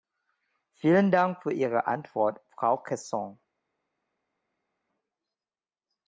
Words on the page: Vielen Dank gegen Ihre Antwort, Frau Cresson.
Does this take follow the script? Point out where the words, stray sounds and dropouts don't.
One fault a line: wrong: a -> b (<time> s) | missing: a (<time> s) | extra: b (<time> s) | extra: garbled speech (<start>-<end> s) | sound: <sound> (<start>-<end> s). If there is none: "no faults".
wrong: gegen -> für (1.4 s)